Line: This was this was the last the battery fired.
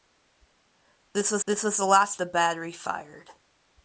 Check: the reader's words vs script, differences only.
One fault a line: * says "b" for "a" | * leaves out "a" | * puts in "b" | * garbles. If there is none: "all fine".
all fine